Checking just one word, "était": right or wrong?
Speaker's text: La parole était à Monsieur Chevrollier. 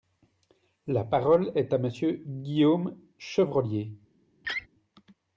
wrong